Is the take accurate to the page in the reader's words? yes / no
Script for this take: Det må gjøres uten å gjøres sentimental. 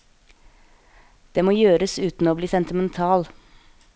no